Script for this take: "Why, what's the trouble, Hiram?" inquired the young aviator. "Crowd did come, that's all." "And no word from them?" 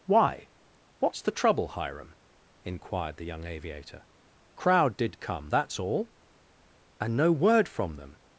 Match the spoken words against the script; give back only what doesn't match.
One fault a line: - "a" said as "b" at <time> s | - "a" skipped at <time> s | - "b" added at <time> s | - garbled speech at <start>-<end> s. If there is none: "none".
none